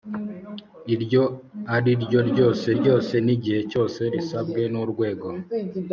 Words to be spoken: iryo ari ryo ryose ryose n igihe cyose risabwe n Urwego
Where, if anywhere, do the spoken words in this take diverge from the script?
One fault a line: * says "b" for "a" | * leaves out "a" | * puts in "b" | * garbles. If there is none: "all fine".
all fine